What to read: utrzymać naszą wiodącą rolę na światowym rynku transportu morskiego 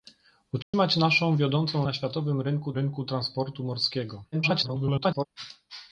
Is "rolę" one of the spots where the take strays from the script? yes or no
yes